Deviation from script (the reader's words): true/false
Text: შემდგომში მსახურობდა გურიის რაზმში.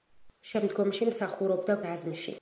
true